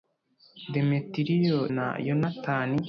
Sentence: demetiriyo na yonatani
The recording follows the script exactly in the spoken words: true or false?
true